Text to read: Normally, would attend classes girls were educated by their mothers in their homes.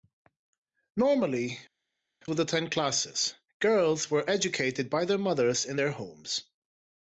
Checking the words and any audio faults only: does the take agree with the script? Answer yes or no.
yes